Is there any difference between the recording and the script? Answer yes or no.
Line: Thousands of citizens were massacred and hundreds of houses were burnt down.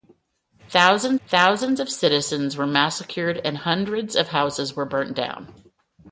yes